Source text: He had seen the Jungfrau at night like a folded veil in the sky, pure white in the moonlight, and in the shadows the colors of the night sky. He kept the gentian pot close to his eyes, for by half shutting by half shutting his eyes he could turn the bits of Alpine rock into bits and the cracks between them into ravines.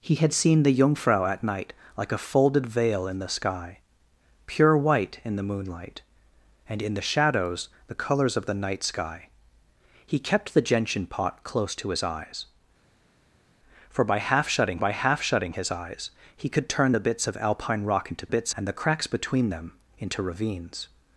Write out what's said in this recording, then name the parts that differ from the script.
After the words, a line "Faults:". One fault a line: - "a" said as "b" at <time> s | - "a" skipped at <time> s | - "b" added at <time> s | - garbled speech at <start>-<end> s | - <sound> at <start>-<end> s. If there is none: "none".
He had seen the Jungfrau at night like a folded veil in the sky, pure white in the moonlight, and in the shadows the colors of the night sky. He kept the gentian pot close to his eyes, for by half shutting by half shutting his eyes he could turn the bits of Alpine rock into bits and the cracks between them into ravines.
Faults:
none